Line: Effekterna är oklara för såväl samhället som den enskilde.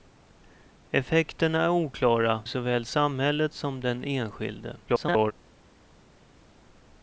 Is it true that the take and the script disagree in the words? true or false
true